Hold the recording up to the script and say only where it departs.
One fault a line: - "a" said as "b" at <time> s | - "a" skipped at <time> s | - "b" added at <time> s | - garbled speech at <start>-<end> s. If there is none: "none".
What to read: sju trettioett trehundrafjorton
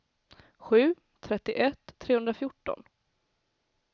none